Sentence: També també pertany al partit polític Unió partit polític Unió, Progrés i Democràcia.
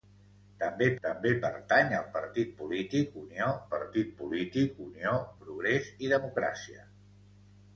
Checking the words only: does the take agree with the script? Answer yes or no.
yes